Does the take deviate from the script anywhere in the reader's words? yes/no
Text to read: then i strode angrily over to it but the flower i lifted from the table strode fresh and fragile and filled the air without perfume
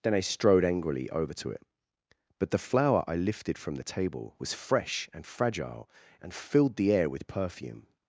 yes